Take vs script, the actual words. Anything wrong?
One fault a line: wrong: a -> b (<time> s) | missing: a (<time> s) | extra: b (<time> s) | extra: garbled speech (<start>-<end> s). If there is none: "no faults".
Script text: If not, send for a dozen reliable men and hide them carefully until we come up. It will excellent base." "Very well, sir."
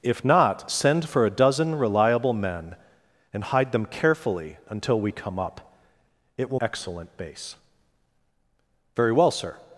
no faults